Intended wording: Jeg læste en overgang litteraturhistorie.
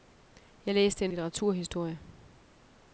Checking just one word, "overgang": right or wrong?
wrong